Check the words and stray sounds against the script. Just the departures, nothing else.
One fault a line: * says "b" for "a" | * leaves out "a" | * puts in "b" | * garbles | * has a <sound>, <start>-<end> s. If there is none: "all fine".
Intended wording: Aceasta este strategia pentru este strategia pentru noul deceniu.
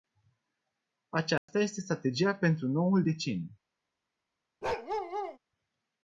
* has a dropout, 1.4-1.5 s
* leaves out "este strategia pentru"
* has a bark, 4.6-5.4 s